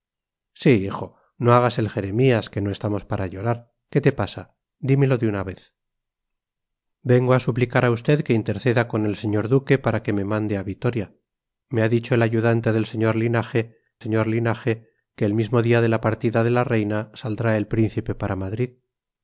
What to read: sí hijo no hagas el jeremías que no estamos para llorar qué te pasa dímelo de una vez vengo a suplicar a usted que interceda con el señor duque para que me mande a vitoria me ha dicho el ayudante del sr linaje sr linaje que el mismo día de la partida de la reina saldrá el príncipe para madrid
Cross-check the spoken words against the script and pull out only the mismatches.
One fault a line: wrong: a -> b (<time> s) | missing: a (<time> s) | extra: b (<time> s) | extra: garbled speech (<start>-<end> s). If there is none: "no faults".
no faults